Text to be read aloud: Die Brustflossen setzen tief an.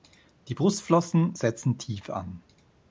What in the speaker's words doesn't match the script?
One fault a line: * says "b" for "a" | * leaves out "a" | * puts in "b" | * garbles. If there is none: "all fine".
all fine